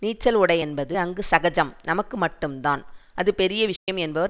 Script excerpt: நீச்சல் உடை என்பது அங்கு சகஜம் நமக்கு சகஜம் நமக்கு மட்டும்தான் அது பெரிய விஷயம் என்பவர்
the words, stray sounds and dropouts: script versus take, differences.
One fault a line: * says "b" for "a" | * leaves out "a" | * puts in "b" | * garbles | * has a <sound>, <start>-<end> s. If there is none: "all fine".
* leaves out "சகஜம் நமக்கு"
* has a dropout, 3.8-3.9 s